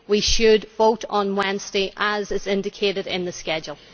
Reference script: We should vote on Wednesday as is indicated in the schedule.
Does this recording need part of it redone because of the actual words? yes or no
no